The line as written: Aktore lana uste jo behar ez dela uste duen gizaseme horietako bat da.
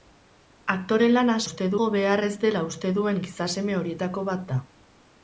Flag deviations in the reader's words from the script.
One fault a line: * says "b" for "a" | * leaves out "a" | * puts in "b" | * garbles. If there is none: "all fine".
all fine